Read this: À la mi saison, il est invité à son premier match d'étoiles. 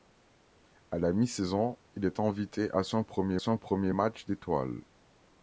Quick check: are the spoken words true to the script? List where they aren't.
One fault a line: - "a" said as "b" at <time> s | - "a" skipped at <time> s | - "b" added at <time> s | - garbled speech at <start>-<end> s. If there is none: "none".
- "son premier" added at 3.4 s